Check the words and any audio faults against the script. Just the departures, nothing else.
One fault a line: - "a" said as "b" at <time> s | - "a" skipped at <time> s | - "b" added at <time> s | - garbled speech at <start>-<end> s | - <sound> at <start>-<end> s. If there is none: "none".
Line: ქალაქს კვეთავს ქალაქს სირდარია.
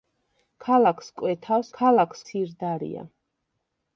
none